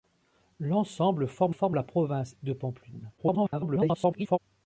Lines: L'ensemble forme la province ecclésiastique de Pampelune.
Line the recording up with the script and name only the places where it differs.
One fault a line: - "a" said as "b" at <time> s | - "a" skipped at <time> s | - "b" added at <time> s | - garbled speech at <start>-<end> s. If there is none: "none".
- "forme" added at 1.5 s
- "ecclésiastique" skipped at 2.4 s
- garbled speech at 3.2-4.4 s